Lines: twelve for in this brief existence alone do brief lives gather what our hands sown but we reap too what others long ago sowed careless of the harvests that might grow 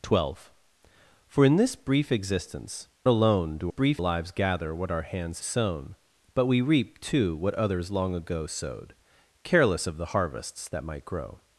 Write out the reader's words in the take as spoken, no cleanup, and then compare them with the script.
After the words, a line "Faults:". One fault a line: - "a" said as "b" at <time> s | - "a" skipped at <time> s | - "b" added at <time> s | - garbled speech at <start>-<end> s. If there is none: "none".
twelve for in this brief existence alone do brief lives gather what our hands sown but we reap too what others long ago sowed careless of the harvests that might grow
Faults:
none